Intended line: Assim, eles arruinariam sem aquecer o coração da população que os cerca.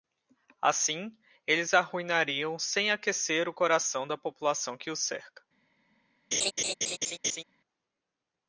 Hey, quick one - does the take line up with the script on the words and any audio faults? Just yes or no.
no